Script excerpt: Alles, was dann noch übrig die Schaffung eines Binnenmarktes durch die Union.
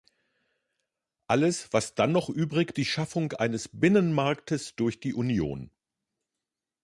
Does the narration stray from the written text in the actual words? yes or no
no